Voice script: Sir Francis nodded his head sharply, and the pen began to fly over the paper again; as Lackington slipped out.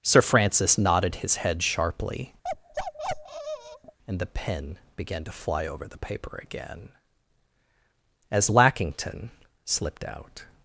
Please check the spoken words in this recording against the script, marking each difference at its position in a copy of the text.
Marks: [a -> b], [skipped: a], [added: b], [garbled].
Sir Francis nodded his head sharply, and the pen began to fly over the paper again; as Lackington slipped out.